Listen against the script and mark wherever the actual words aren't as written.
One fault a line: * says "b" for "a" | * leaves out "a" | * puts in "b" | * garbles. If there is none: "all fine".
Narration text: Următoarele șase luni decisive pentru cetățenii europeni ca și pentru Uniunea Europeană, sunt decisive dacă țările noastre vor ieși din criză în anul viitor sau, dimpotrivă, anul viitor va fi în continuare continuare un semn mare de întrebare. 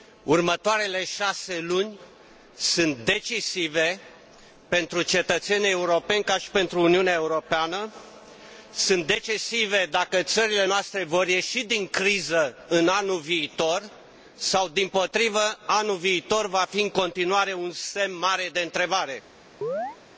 * puts in "sunt"
* leaves out "continuare"